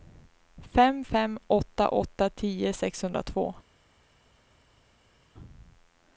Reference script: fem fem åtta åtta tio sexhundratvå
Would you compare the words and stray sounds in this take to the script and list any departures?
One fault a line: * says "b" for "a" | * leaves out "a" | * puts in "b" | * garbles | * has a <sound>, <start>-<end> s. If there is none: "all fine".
all fine